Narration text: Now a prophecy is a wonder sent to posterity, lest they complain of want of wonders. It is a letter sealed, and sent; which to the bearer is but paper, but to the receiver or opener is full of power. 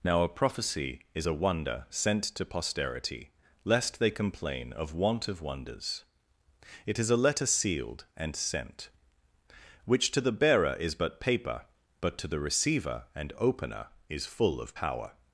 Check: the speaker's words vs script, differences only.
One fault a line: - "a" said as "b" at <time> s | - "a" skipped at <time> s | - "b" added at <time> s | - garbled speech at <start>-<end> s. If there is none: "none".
- "or" said as "and" at 13.2 s